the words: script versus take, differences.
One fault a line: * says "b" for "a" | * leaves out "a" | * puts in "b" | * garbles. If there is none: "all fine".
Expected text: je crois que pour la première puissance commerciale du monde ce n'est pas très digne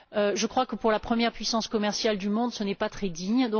all fine